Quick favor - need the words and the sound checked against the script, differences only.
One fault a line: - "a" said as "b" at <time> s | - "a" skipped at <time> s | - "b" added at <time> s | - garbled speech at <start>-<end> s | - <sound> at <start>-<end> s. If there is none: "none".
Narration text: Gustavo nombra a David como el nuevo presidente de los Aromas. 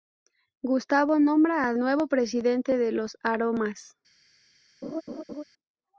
- "David como el" skipped at 1.8 s
- laugh at 4.8-5.4 s